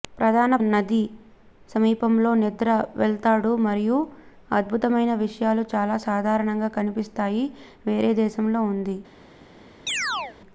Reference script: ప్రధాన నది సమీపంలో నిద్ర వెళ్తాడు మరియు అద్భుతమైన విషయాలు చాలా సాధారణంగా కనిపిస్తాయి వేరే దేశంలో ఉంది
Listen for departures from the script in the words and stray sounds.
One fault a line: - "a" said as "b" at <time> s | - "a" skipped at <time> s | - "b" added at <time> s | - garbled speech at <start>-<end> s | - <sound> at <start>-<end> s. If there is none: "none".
- chirp at 9.9-10.4 s